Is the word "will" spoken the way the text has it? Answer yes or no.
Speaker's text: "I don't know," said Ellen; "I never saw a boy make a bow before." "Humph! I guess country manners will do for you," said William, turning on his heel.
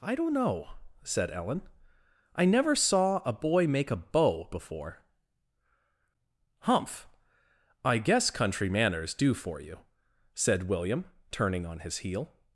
no